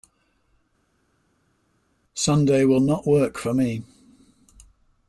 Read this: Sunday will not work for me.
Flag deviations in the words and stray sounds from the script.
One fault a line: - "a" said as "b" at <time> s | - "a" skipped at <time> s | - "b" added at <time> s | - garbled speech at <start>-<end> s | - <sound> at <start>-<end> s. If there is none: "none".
none